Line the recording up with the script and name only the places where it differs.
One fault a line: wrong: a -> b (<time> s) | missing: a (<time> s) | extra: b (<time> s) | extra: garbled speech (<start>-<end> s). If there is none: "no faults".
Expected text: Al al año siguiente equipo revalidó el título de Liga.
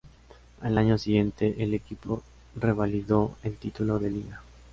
missing: al (0.8 s)
extra: el (1.6 s)